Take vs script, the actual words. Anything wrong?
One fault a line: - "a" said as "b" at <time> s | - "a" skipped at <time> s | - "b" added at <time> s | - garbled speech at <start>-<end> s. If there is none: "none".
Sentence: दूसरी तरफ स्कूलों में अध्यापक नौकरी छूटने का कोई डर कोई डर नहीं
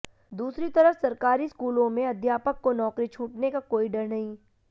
- "सरकारी" added at 1.0 s
- "को" added at 2.6 s
- "कोई डर" skipped at 4.1 s